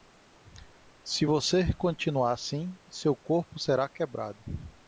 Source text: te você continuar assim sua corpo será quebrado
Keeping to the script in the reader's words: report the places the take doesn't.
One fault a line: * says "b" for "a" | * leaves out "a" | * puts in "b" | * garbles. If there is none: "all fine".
* says "se" for "te"
* says "seu" for "sua"